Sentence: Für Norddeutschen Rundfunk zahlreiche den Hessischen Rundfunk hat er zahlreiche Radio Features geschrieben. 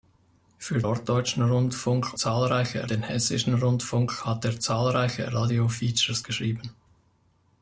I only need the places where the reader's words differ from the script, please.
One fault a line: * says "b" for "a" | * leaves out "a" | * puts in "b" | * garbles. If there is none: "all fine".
all fine